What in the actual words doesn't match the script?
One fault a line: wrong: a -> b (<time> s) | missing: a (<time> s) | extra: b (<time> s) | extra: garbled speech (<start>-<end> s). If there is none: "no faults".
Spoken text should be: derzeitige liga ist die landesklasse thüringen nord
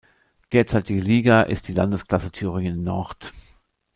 no faults